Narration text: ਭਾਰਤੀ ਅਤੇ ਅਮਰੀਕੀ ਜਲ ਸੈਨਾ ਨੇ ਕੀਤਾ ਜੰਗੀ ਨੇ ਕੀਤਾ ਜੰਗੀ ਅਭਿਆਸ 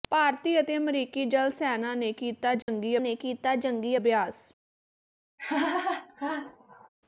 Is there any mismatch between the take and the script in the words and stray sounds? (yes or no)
yes